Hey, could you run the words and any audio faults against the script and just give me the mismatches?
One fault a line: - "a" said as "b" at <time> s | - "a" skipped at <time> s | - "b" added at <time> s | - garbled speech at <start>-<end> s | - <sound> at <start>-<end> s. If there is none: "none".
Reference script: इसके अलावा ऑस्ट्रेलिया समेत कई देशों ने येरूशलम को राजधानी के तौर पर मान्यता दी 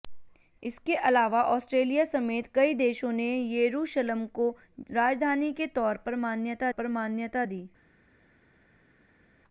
- "पर मान्यता" added at 6.7 s